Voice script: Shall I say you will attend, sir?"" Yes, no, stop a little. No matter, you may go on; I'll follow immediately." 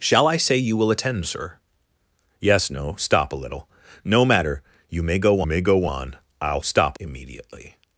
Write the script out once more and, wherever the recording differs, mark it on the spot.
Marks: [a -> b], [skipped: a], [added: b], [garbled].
Shall I say you will attend, sir?"" Yes, no, stop a little. No matter, you may go [added: may go] on; I'll [follow -> stop] immediately."